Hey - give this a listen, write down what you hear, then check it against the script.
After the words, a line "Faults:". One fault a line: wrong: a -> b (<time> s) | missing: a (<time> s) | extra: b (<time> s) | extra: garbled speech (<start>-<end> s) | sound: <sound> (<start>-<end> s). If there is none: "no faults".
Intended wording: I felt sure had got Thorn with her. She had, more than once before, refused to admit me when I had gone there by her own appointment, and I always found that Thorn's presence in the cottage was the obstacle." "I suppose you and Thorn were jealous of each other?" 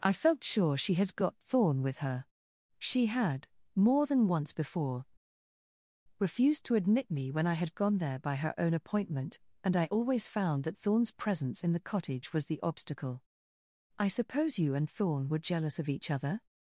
I felt sure she had got Thorn with her. She had, more than once before, refused to admit me when I had gone there by her own appointment, and I always found that Thorn's presence in the cottage was the obstacle." "I suppose you and Thorn were jealous of each other?"
Faults:
extra: she (0.8 s)